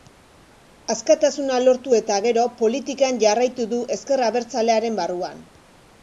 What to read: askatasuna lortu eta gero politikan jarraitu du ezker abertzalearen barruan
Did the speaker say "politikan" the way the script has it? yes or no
yes